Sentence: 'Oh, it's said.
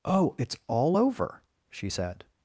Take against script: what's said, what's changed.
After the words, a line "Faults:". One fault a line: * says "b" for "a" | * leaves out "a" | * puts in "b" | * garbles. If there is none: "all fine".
'Oh, it's all over,' she said.
Faults:
* puts in "all over she"